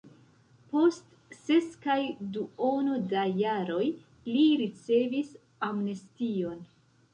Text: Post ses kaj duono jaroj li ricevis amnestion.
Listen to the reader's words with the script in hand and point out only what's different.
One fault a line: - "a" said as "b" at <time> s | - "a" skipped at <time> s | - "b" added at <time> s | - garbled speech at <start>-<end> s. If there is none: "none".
- "da" added at 3.1 s